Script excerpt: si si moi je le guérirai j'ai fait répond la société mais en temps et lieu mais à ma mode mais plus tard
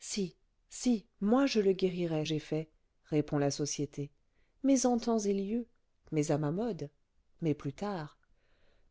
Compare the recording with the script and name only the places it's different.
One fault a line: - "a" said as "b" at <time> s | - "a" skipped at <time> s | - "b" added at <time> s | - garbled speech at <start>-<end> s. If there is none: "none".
none